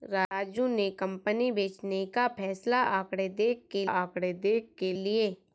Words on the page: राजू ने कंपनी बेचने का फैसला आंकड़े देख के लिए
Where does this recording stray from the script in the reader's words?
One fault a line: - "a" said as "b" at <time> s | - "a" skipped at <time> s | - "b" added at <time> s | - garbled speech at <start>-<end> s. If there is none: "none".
- "आंकड़े देख के" added at 3.8 s